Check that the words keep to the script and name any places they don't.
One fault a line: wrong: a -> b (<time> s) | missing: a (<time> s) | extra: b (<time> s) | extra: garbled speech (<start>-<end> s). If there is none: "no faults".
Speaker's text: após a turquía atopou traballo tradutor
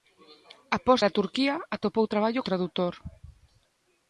no faults